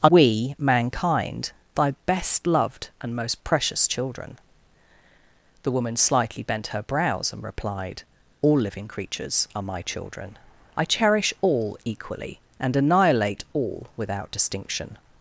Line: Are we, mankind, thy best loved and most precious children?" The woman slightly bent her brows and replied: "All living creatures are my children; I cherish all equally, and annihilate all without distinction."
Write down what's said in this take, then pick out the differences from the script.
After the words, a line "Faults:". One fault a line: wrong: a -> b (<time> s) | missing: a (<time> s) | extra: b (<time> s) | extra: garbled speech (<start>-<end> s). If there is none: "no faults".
Are we, mankind, thy best loved and most precious children?" The woman slightly bent her brows and replied: "All living creatures are my children; I cherish all equally, and annihilate all without distinction."
Faults:
no faults